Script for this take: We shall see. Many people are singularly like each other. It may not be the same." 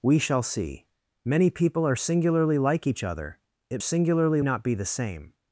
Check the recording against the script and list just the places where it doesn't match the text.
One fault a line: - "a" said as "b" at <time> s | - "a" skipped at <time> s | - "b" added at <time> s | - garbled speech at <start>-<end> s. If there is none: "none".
- "may" said as "singularly" at 3.8 s